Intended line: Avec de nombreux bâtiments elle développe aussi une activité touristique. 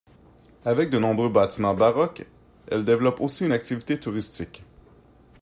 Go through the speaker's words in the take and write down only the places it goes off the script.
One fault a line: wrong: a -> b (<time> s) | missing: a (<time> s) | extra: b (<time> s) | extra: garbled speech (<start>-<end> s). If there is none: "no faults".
extra: baroques (1.8 s)